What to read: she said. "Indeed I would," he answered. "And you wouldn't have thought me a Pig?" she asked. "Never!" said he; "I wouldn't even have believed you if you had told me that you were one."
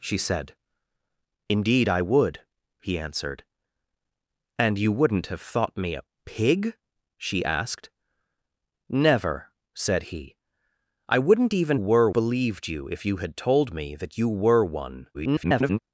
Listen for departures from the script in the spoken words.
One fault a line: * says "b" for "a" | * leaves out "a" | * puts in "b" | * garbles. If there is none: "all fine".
* says "were" for "have"
* garbles